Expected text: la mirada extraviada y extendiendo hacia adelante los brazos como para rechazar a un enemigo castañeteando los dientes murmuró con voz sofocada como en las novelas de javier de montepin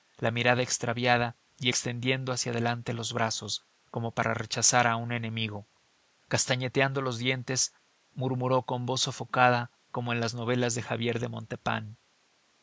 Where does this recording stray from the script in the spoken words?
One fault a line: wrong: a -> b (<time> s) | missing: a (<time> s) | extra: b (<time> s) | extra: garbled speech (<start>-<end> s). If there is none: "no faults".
no faults